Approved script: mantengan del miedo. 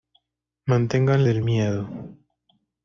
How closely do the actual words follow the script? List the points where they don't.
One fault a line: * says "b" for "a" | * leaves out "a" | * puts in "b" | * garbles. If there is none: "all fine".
all fine